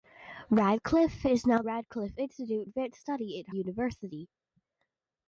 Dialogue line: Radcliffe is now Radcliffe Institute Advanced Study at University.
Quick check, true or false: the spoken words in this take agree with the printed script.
true